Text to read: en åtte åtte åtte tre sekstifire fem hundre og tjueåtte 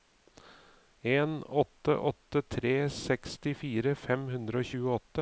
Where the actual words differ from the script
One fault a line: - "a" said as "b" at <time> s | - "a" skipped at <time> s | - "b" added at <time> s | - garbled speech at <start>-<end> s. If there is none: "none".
- "åtte" skipped at 2.4 s